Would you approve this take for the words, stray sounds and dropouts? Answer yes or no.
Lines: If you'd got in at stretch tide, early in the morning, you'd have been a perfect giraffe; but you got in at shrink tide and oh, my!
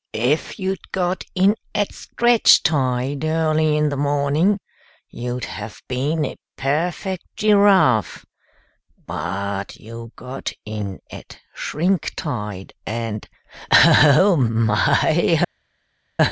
yes